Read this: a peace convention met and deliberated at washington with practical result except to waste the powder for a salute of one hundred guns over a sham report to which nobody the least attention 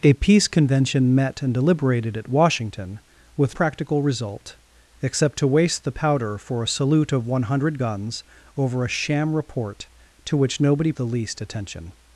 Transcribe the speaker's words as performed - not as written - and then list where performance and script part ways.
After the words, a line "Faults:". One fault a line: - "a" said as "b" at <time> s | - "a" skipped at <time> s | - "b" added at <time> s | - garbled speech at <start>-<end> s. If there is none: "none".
a peace convention met and deliberated at washington with practical result except to waste the powder for a salute of one hundred guns over a sham report to which nobody the least attention
Faults:
none